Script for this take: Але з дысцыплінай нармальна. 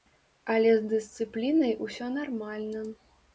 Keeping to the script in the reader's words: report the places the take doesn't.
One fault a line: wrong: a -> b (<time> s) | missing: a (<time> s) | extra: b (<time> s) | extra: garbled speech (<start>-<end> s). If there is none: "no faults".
extra: усё (1.9 s)